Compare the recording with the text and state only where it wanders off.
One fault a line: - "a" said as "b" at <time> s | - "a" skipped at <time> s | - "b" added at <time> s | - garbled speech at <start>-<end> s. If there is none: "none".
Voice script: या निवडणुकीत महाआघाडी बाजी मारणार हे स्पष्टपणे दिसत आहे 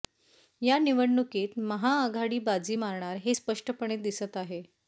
none